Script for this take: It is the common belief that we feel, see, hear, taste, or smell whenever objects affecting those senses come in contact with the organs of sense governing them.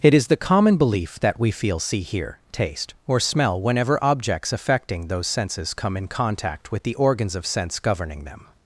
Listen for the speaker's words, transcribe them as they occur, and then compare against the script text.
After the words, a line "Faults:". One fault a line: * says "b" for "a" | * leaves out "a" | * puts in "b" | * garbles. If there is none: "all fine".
It is the common belief that we feel, see, hear, taste, or smell whenever objects affecting those senses come in contact with the organs of sense governing them.
Faults:
all fine